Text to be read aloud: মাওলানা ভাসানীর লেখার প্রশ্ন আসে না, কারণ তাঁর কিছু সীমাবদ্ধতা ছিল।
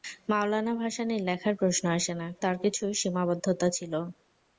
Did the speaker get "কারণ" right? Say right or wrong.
wrong